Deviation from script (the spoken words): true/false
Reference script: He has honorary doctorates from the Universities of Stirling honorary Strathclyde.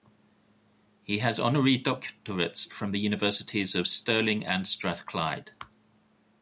true